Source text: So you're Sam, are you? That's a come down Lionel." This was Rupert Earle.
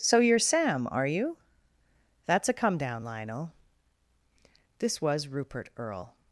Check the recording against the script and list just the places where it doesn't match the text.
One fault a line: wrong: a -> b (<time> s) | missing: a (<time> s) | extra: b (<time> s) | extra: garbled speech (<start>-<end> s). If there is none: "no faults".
no faults